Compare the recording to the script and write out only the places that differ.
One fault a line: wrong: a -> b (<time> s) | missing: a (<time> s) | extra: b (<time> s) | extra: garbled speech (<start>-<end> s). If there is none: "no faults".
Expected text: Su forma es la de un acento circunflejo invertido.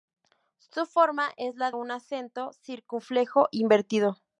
missing: de (1.7 s)